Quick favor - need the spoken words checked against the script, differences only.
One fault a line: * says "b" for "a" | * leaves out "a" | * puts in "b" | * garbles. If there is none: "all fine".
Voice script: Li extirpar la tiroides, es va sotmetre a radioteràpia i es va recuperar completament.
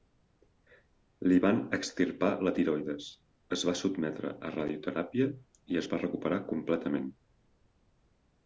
* puts in "van"